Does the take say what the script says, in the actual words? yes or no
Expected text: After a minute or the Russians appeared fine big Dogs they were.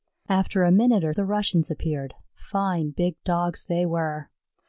yes